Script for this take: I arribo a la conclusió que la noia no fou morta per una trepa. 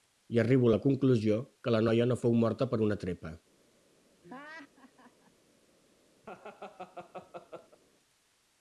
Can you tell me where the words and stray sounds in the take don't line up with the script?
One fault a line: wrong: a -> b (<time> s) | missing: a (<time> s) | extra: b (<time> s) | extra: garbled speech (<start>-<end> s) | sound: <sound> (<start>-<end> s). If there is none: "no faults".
sound: laugh (4.2-5.3 s)
sound: laugh (6.2-7.8 s)